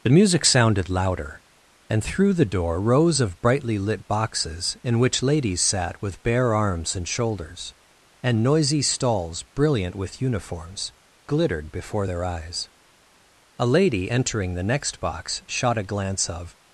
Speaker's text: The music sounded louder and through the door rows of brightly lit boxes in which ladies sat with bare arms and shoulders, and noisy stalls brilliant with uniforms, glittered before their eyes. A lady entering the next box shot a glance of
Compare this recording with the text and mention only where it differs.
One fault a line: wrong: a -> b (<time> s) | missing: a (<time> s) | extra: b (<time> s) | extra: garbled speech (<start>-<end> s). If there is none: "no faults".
no faults